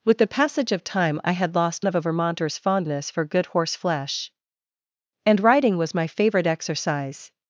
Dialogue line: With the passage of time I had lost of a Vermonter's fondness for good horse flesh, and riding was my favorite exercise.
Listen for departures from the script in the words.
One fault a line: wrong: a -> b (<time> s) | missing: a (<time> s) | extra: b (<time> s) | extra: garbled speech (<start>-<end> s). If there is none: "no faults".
no faults